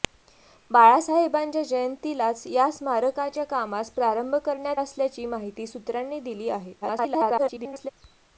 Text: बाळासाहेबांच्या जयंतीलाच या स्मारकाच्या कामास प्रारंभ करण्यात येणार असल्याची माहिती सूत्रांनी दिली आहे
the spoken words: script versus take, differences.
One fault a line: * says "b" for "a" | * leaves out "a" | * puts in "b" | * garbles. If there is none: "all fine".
* leaves out "येणार"
* garbles